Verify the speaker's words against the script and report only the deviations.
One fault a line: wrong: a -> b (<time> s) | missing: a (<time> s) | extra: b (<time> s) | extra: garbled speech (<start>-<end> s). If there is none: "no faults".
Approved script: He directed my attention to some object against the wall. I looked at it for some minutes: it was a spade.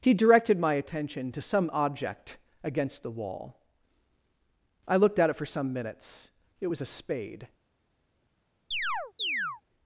no faults